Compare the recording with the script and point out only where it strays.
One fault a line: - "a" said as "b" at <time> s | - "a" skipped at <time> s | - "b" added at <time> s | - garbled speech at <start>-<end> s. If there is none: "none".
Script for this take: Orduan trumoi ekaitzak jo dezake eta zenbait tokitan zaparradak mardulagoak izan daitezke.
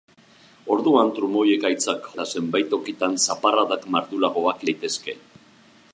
- "jo dezake" skipped at 2.1 s
- "izan" skipped at 4.7 s